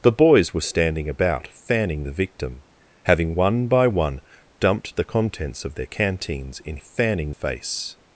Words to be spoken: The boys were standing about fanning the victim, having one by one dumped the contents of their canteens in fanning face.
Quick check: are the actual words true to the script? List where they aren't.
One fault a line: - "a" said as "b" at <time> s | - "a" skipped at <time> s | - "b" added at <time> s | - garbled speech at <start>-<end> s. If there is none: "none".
none